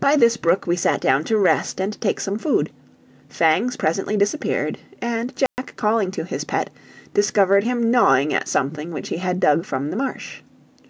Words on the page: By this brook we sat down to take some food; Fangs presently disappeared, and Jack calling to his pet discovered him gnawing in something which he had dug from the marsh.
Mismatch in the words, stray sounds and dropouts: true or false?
true